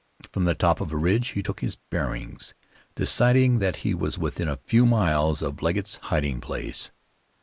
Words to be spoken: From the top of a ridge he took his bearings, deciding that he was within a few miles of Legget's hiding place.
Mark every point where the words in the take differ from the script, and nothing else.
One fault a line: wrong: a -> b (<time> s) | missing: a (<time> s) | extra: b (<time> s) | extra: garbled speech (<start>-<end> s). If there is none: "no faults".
no faults